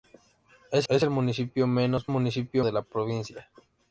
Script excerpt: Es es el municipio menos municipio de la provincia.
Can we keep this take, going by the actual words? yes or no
yes